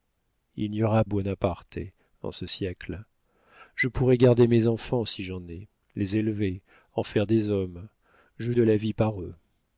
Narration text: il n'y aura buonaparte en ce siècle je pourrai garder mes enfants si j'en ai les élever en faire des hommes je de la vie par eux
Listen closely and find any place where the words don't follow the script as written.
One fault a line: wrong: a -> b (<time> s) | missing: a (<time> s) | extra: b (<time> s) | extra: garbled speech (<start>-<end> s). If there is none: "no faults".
no faults